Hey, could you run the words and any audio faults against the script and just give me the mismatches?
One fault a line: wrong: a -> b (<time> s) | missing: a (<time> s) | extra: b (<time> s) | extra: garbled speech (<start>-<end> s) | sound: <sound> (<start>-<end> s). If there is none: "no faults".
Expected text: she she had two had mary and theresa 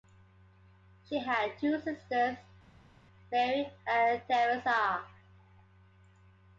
missing: she (1.2 s)
wrong: had -> sisters (1.8 s)